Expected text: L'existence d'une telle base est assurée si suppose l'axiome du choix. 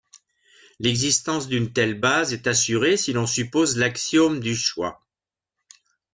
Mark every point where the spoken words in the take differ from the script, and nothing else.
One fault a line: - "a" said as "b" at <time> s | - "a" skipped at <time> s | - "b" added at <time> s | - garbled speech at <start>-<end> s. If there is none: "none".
- "l'on" added at 3.1 s